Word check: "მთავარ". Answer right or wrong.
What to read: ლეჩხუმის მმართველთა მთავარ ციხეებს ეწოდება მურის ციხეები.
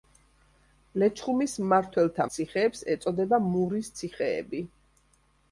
wrong